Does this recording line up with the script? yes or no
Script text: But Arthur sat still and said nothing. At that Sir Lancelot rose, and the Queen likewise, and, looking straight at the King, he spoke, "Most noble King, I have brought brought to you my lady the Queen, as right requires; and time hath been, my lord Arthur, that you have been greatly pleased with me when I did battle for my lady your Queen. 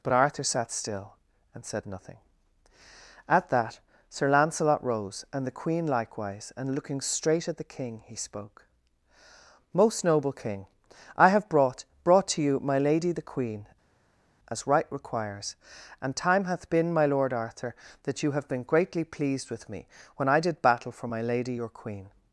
yes